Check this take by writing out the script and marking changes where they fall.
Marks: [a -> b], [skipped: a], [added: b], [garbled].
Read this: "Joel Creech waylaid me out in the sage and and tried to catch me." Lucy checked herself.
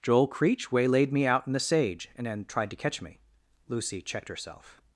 "Joel Creech waylaid me out in the sage and [and -> then] tried to catch me." Lucy checked herself.